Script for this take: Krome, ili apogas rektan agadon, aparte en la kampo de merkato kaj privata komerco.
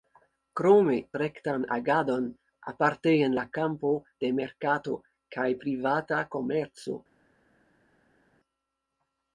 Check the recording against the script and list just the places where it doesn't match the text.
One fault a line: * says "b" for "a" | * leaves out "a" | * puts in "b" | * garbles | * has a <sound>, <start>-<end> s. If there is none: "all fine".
* leaves out "ili apogas"